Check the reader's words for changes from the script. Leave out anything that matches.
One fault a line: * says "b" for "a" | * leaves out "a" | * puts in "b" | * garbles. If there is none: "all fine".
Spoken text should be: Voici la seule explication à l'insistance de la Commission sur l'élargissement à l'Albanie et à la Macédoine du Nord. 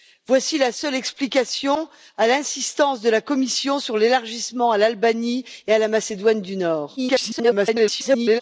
* garbles